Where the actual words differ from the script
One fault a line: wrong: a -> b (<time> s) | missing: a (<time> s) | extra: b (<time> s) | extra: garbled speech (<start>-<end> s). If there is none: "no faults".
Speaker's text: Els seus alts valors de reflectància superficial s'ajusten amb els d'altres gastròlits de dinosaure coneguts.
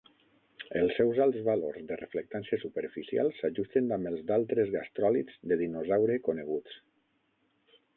no faults